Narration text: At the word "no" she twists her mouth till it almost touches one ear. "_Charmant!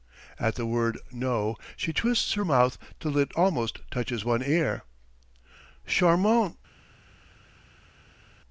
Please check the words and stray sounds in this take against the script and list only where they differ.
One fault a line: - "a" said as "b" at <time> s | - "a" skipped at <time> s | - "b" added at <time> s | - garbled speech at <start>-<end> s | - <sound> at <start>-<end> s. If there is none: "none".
none